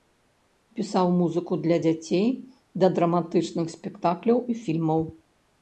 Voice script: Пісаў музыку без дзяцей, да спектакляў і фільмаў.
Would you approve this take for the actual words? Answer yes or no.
no